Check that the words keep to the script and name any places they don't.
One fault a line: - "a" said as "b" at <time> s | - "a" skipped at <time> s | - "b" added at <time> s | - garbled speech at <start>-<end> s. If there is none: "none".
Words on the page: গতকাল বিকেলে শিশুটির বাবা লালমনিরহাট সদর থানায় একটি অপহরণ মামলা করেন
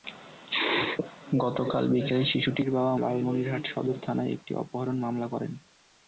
none